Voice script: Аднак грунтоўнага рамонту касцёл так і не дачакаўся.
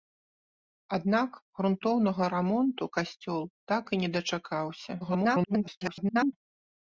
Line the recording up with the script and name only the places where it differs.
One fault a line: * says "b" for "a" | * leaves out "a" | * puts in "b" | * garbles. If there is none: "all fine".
* garbles